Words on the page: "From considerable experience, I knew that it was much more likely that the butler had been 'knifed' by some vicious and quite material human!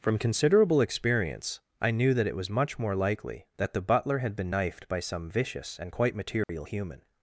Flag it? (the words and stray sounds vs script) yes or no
yes